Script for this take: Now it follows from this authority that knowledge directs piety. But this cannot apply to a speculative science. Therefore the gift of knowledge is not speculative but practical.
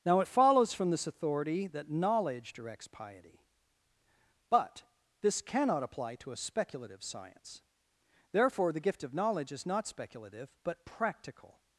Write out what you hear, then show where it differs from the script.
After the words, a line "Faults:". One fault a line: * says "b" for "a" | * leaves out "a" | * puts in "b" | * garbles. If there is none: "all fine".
Now it follows from this authority that knowledge directs piety. But this cannot apply to a speculative science. Therefore the gift of knowledge is not speculative but practical.
Faults:
all fine